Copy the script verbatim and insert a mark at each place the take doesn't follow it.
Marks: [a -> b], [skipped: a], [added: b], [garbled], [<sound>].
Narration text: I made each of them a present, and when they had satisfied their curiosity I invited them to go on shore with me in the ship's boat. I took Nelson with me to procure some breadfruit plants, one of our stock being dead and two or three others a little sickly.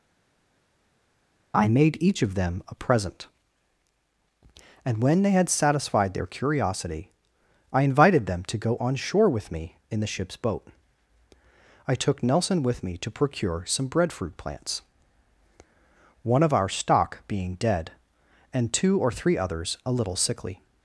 I made each of them a present, and when they had satisfied their curiosity I invited them to go on shore with me in the ship's boat. I took Nelson with me to procure some breadfruit plants, one of our stock being dead and two or three others a little sickly.